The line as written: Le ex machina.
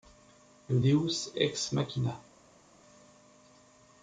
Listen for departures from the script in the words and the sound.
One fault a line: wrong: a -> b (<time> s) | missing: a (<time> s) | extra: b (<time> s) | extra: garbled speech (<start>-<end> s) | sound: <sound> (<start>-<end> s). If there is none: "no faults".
extra: deus (0.8 s)